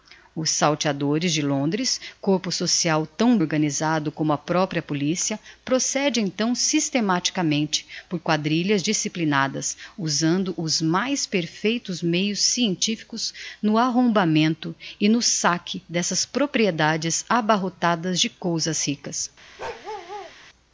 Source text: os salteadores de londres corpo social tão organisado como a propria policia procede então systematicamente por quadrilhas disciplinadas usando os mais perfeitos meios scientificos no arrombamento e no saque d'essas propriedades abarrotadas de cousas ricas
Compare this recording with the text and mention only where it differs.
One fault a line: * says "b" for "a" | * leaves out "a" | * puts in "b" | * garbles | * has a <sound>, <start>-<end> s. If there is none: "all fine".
* has a bark, 19.6-20.3 s